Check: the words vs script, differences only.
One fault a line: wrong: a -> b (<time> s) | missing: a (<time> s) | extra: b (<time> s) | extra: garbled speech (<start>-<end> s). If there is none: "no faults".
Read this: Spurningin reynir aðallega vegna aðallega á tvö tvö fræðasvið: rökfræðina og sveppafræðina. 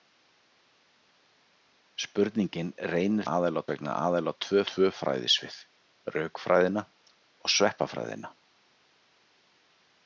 no faults